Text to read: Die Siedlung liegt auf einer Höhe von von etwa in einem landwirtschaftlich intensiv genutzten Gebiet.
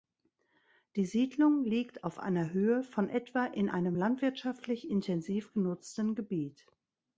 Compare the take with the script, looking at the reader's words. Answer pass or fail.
fail